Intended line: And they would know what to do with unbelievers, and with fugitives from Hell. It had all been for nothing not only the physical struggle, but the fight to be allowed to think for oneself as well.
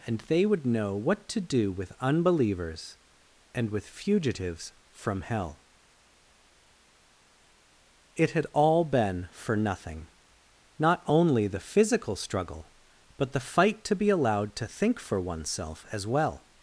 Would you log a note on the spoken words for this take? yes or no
no